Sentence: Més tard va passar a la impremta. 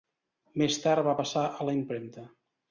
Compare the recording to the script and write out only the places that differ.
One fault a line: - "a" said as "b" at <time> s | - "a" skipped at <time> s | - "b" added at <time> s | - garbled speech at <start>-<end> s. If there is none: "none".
none